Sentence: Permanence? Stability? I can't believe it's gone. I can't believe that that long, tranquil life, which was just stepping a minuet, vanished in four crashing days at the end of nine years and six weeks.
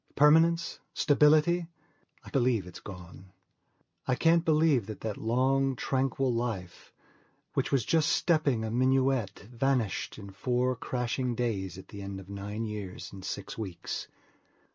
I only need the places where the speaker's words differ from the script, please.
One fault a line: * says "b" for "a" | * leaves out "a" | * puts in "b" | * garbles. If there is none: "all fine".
* leaves out "can't"